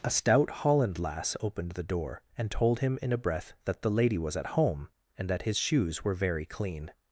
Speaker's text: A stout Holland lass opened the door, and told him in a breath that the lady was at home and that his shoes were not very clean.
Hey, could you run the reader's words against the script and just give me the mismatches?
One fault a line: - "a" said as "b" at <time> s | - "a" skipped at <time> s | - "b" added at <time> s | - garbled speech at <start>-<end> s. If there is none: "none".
- "not" skipped at 6.1 s